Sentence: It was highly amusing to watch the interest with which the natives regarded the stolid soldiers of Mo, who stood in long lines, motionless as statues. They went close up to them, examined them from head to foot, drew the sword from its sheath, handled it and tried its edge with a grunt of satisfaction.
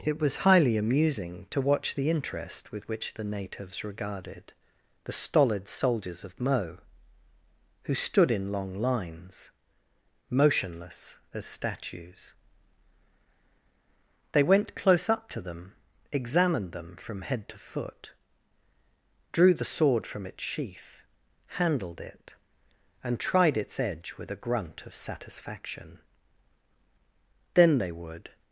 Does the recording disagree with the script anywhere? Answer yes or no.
yes